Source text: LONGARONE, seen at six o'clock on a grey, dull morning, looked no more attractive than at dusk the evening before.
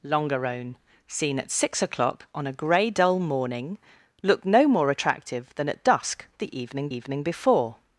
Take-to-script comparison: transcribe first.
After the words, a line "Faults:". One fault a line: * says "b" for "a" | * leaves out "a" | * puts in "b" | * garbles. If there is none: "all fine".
LONGARONE, seen at six o'clock on a grey, dull morning, looked no more attractive than at dusk the evening evening before.
Faults:
* puts in "evening"